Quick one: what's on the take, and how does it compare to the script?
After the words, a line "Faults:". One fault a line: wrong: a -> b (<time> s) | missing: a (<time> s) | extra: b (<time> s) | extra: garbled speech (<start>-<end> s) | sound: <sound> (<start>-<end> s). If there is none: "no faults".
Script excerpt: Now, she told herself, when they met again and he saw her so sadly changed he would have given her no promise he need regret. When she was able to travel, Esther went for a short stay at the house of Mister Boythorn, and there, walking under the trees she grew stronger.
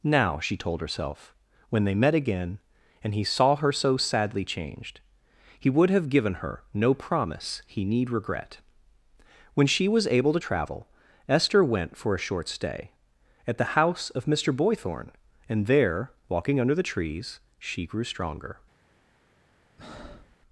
Now, she told herself, when they met again and he saw her so sadly changed he would have given her no promise he need regret. When she was able to travel, Esther went for a short stay at the house of Mister Boythorn, and there, walking under the trees she grew stronger.
Faults:
sound: breath (19.8-20.4 s)